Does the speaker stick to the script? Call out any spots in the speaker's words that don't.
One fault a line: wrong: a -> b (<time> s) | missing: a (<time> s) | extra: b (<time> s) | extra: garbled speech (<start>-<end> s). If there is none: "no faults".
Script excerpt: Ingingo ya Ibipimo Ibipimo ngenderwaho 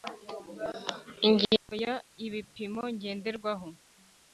missing: Ibipimo (2.8 s)